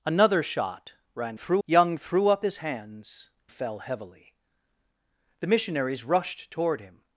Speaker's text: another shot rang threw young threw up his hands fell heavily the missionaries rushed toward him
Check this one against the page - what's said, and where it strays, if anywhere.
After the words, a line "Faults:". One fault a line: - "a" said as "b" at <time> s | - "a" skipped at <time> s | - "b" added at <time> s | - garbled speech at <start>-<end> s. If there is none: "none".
another shot rang threw young threw up his hands fell heavily the missionaries rushed toward him
Faults:
none